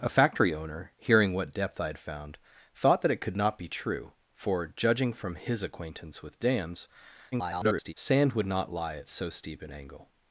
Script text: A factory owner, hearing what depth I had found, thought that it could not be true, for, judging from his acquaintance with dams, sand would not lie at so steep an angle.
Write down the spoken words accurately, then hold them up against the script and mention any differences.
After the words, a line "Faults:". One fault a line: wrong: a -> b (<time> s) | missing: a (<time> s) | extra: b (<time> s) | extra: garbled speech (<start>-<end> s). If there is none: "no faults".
A factory owner, hearing what depth I had found, thought that it could not be true, for, judging from his acquaintance with dams, [garbled] sand would not lie at so steep an angle.
Faults:
extra: garbled speech (7.3-7.9 s)